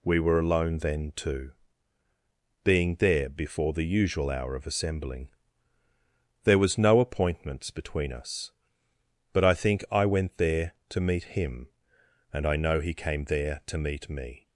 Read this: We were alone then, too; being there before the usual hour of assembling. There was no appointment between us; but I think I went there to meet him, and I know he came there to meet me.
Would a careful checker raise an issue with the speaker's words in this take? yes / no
yes